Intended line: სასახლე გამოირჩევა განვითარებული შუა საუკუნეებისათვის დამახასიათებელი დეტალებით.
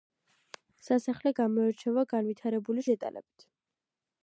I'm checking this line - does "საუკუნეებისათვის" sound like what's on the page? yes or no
no